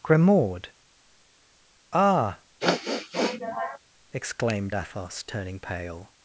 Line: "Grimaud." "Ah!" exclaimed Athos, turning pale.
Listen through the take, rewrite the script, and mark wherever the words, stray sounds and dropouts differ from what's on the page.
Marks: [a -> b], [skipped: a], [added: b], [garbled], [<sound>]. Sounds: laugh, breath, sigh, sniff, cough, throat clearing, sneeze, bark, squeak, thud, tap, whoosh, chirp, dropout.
"Grimaud." "Ah!" [sniff] exclaimed Athos, turning pale.